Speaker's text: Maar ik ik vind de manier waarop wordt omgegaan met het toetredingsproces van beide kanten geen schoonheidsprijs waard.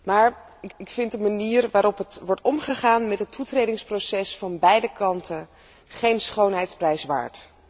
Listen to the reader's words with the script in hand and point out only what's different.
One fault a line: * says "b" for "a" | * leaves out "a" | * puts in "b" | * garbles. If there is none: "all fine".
all fine